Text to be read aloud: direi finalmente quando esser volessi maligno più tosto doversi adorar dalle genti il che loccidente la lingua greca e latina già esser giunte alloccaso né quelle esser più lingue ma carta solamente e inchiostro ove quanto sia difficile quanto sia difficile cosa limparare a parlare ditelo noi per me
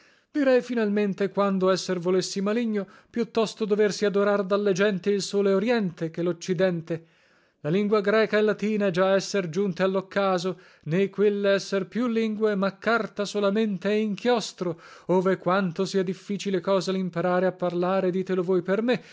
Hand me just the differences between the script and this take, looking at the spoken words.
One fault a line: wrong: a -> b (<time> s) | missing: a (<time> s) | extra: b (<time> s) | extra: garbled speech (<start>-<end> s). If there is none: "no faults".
extra: sole oriente (5.2 s)
missing: quanto sia difficile (16.6 s)
wrong: noi -> voi (18.4 s)